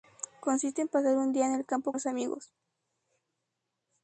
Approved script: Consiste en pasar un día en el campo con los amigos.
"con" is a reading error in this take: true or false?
true